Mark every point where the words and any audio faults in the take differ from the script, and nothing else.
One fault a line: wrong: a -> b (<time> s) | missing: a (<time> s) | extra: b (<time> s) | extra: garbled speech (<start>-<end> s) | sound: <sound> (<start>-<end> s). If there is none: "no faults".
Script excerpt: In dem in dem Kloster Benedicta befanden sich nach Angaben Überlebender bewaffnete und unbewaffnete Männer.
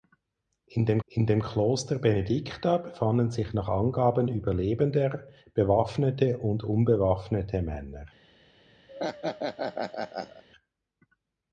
sound: laugh (8.9-10.4 s)